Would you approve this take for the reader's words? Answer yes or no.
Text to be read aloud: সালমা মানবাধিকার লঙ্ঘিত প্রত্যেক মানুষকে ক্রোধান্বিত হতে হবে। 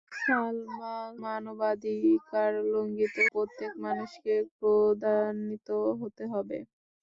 yes